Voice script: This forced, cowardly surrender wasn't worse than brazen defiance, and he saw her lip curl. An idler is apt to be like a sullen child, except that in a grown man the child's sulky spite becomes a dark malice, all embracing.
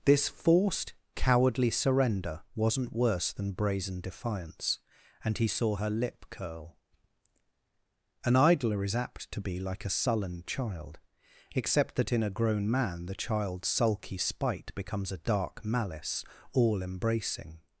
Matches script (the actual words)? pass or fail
pass